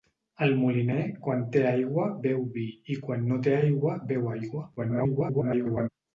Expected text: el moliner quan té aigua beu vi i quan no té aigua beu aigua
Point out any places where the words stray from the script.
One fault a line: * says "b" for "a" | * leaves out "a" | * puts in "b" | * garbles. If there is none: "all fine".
* garbles